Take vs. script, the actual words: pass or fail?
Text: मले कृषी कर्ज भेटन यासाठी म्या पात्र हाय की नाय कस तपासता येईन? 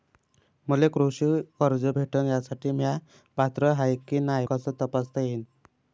pass